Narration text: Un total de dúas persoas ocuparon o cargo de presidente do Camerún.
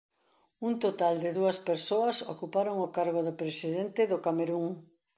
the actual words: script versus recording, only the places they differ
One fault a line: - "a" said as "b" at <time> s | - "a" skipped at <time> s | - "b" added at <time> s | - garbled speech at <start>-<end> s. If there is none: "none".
none